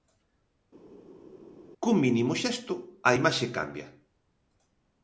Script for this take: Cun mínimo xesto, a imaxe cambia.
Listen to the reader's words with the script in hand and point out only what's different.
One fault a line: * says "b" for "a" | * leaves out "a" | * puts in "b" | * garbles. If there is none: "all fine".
all fine